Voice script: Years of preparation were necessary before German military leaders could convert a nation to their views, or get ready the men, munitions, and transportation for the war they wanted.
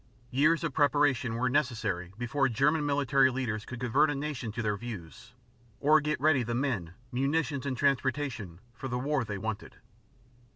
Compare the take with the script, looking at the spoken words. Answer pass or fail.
pass